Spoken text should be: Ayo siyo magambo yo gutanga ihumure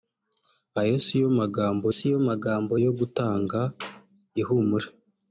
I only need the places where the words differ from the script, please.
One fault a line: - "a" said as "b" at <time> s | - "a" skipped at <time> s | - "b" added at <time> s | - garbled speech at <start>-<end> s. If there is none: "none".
- "siyo magambo" added at 2.0 s